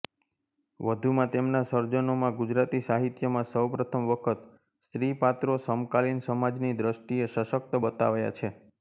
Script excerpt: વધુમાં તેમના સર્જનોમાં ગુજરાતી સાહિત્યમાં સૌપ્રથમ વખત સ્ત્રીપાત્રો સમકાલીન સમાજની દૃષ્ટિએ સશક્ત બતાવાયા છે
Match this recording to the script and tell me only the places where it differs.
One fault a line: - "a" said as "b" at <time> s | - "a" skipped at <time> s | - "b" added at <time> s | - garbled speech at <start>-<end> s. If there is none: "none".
none